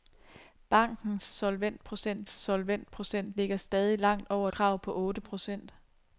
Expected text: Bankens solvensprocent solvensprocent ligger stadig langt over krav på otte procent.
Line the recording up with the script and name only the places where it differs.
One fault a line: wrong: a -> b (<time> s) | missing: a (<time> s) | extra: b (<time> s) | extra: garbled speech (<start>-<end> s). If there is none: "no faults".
no faults